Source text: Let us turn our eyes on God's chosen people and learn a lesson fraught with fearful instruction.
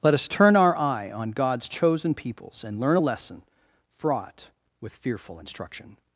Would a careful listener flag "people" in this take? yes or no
yes